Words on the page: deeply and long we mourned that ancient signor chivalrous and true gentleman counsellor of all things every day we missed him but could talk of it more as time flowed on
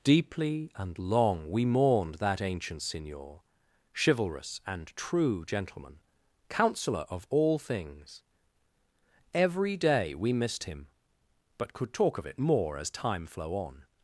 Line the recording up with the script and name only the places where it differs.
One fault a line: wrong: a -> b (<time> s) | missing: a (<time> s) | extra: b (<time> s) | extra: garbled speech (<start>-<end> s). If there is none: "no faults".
wrong: flowed -> flow (13.3 s)